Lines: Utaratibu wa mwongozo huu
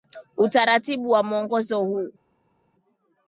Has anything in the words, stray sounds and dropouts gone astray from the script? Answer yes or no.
no